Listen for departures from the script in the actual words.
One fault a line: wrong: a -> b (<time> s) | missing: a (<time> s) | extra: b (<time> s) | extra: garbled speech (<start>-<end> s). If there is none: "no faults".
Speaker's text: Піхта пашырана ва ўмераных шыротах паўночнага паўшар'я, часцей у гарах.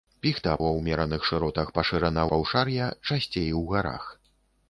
missing: пашырана (0.5 s)
wrong: паўночнага -> пашырана (1.7 s)